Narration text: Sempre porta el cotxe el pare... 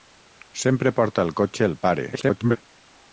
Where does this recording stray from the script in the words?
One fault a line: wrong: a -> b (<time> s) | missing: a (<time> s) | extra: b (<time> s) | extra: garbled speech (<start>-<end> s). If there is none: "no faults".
extra: garbled speech (2.1-2.6 s)